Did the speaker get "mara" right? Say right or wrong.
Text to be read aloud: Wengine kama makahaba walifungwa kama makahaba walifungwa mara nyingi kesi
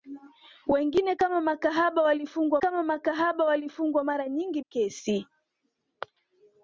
right